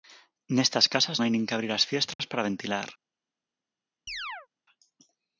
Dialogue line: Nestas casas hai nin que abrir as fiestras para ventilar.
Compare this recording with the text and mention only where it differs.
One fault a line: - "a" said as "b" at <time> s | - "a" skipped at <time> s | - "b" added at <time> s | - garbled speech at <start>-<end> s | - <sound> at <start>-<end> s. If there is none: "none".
- dropout at 2.1-2.2 s
- chirp at 4.1-4.5 s